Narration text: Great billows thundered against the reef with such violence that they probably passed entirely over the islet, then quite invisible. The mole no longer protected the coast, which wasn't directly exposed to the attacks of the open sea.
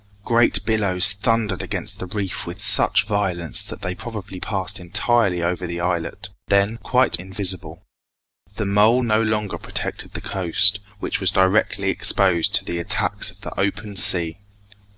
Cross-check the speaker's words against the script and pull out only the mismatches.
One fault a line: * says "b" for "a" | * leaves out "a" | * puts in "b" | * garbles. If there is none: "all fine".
* says "was" for "wasn't"